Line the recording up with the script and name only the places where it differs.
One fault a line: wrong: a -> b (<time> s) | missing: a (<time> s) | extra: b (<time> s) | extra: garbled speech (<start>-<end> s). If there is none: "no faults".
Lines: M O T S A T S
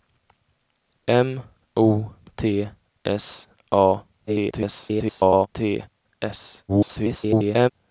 extra: garbled speech (4.3-5.5 s)
extra: garbled speech (6.7-7.7 s)